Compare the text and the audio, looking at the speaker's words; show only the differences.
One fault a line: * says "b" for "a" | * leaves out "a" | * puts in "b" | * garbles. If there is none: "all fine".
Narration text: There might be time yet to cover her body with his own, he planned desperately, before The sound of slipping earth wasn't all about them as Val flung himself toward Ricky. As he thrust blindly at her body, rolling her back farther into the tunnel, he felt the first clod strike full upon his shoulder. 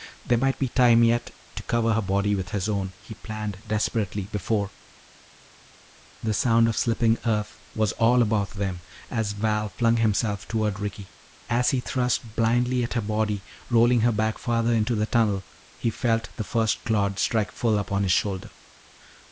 * says "was" for "wasn't"